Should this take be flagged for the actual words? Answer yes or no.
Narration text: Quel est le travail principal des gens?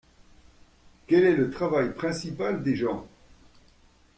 no